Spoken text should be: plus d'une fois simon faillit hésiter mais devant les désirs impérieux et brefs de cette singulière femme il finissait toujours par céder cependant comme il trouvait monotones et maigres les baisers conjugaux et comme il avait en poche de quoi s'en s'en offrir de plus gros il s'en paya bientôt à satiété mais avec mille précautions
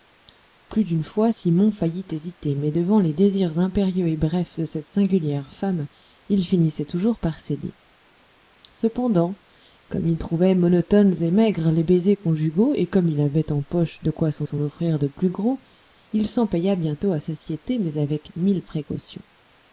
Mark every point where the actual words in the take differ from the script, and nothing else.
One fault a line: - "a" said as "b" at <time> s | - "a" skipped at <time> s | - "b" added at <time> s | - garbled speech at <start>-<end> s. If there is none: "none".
none